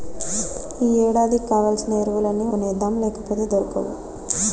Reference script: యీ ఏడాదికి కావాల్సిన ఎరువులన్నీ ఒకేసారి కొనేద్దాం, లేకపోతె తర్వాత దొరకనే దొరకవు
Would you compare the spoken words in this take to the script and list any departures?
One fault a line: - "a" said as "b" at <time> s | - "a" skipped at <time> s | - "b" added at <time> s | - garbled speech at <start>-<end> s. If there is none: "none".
- "ఒకేసారి" skipped at 2.5 s
- "తర్వాత దొరకనే" skipped at 3.4 s